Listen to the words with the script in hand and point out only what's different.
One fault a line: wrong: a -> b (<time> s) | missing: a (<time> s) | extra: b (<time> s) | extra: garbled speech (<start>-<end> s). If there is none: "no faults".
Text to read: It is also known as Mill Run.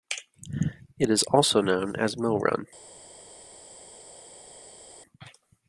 no faults